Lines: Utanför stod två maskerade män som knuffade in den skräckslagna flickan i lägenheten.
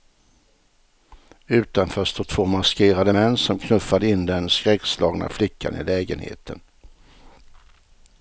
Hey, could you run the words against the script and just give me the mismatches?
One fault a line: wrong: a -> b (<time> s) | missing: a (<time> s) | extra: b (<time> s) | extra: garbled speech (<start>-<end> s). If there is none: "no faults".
no faults